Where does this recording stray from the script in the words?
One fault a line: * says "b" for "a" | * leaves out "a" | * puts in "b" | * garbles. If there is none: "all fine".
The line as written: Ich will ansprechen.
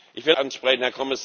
all fine